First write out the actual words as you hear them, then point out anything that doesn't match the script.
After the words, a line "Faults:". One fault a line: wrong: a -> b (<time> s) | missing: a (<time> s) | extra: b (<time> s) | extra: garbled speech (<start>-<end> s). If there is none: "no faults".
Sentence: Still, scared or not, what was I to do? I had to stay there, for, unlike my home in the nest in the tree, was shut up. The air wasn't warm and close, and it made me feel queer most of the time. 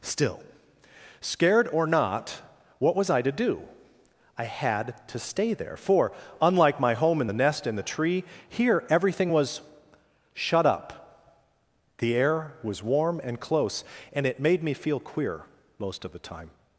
Still, scared or not, what was I to do? I had to stay there, for, unlike my home in the nest in the tree, here everything was shut up. The air was warm and close, and it made me feel queer most of the time.
Faults:
extra: here everything (8.5 s)
wrong: wasn't -> was (12.6 s)